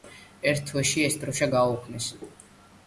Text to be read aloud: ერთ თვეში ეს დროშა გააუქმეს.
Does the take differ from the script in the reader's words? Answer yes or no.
no